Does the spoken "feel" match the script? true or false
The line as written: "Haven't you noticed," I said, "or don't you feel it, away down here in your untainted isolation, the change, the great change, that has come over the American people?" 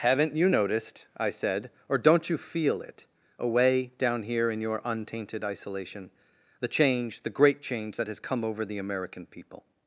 true